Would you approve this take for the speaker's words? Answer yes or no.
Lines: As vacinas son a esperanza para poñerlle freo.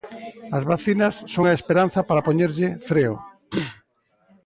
yes